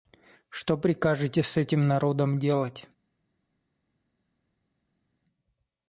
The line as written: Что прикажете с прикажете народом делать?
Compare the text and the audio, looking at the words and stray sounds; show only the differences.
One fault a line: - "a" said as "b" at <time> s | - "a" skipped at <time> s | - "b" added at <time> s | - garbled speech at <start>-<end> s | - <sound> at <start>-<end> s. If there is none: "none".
- "прикажете" said as "этим" at 1.6 s